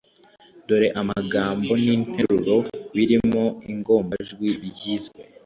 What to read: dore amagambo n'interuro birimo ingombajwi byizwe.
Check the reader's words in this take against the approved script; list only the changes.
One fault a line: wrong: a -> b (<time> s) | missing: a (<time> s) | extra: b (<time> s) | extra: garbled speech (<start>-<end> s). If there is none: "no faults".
no faults